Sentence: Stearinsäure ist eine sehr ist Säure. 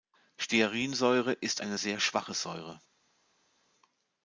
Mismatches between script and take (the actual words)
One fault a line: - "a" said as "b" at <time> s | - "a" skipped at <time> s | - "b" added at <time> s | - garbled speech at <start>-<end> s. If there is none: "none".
- "ist" said as "schwache" at 2.0 s